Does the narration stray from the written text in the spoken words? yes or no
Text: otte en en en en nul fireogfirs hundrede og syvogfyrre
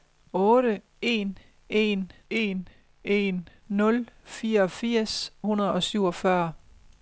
no